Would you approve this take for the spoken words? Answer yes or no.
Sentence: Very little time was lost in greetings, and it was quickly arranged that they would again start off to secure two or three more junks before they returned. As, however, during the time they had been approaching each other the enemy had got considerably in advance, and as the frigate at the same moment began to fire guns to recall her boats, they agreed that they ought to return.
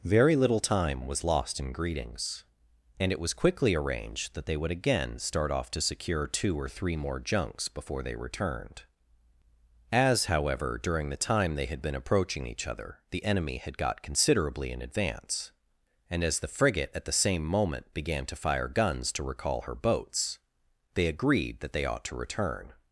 yes